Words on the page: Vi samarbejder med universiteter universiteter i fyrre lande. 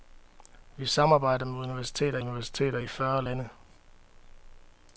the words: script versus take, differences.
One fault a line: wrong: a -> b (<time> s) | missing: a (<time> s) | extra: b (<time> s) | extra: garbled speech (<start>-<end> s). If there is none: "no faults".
no faults